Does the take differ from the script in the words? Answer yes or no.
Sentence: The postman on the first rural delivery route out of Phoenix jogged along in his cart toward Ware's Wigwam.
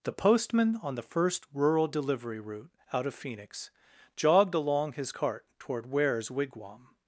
yes